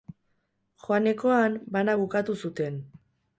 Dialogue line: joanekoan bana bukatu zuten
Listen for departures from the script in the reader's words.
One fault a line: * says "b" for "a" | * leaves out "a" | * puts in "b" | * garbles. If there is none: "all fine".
all fine